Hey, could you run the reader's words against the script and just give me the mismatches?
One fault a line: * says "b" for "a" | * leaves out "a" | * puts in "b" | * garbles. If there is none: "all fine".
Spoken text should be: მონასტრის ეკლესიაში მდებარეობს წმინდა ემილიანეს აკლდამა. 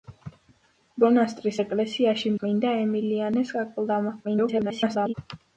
* leaves out "მდებარეობს"
* garbles